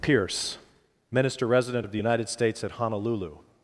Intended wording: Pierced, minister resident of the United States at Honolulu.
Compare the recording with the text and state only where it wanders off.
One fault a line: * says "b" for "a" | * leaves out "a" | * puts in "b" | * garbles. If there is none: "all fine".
* says "Pierce" for "Pierced"